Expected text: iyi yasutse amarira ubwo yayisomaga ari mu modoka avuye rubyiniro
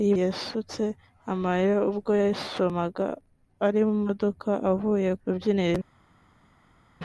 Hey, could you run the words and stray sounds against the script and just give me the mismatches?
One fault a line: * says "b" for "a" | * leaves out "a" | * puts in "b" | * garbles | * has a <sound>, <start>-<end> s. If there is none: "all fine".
all fine